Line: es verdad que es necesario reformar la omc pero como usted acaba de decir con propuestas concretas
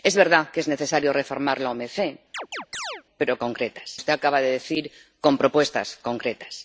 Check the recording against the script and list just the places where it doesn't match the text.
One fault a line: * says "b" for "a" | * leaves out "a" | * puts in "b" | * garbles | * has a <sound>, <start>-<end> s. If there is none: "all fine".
* has a chirp, 2.3-3.0 s
* says "concretas" for "como"